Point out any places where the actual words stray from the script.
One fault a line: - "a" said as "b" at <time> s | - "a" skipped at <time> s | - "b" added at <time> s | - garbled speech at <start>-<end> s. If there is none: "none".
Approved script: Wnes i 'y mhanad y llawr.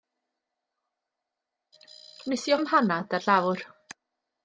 none